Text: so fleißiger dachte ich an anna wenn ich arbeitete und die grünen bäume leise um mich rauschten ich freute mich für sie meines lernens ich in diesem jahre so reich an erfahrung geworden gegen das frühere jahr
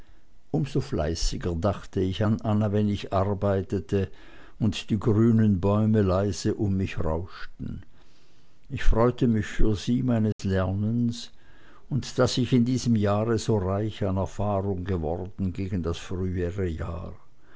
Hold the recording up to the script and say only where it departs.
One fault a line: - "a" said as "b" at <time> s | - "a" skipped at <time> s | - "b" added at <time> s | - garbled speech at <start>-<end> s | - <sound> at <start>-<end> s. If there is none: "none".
- dropout at 10.3-10.4 s
- "und daß" added at 11.9 s